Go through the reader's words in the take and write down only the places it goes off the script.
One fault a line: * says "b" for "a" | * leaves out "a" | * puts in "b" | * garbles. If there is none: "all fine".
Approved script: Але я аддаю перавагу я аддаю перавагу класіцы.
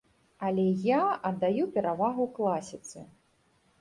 * leaves out "я аддаю перавагу"